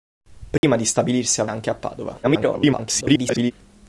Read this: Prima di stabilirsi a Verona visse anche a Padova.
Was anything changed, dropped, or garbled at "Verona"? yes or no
yes